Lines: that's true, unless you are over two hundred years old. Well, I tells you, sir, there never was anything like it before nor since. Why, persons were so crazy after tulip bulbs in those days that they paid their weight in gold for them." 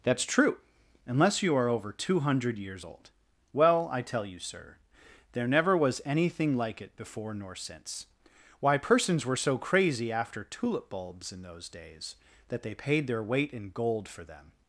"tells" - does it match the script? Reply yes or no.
no